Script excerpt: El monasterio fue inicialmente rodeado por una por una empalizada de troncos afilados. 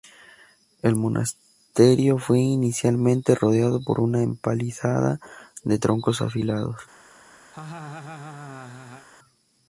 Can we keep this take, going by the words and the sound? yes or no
no